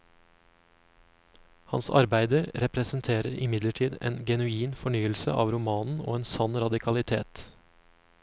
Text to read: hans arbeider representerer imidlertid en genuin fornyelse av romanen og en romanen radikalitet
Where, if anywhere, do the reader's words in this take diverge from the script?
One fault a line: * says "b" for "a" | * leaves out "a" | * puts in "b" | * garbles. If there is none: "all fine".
* says "sann" for "romanen"